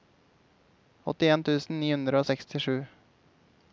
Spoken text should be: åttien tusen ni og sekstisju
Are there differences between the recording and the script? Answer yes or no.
yes